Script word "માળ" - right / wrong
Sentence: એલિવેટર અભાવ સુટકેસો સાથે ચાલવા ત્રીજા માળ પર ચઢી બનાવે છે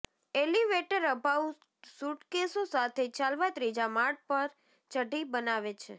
right